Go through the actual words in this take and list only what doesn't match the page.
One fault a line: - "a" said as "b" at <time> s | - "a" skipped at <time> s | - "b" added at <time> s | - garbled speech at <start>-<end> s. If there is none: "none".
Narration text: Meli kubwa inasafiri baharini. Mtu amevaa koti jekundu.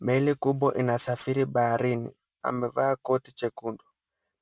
- "Mtu" skipped at 2.1 s